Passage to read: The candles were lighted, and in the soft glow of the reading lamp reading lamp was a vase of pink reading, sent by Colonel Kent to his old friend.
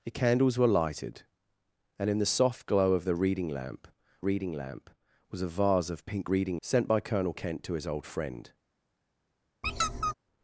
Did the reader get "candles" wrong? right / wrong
right